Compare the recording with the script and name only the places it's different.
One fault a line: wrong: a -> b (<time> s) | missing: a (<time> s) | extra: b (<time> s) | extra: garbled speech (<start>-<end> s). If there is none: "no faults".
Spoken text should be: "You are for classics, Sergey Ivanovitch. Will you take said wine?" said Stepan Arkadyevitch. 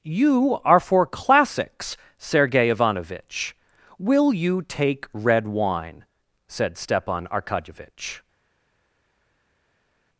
wrong: said -> red (5.1 s)